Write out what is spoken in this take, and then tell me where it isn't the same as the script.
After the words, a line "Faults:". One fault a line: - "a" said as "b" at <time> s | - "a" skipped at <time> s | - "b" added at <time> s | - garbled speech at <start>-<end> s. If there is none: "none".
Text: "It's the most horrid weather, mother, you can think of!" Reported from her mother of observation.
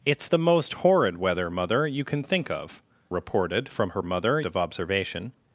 "It's the most horrid weather, mother, you can think of!" Reported from her mother of observation.
Faults:
none